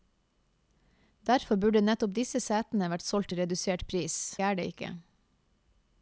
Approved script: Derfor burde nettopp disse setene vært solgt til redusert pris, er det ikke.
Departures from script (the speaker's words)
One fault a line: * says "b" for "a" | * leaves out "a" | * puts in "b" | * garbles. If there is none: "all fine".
all fine